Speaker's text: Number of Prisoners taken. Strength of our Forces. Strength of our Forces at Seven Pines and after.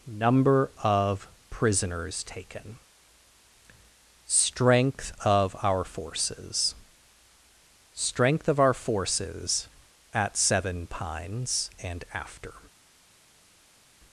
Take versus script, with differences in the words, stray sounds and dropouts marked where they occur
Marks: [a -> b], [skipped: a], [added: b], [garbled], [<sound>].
Number of Prisoners taken. Strength of our Forces. Strength of our Forces at Seven Pines and after.